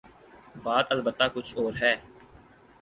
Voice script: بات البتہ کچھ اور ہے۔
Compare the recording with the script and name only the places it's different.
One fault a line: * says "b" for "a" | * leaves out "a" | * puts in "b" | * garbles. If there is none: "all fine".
all fine